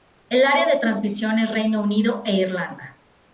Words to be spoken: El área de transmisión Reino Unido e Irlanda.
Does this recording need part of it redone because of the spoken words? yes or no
yes